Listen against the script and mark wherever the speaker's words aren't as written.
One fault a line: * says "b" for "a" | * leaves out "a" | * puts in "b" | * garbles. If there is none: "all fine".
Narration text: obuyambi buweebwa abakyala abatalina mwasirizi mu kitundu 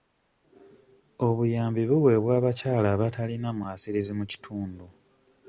all fine